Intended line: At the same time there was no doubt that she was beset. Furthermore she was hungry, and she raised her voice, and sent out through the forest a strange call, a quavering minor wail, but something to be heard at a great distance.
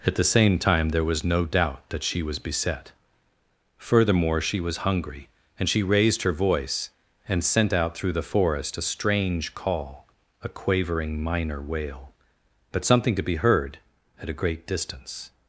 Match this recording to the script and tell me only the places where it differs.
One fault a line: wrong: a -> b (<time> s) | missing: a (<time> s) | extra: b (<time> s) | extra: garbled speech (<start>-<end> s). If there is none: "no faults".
no faults